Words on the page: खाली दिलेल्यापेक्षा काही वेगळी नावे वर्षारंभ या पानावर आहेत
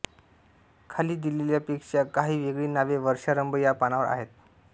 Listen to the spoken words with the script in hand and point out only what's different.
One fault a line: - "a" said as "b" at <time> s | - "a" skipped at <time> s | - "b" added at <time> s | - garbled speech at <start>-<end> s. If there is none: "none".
none